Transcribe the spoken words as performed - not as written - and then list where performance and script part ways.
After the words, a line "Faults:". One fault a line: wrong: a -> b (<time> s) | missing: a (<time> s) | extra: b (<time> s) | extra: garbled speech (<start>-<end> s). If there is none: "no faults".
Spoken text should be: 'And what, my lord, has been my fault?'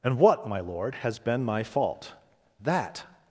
'And what, my lord, has been my fault?' 'That
Faults:
extra: That (2.6 s)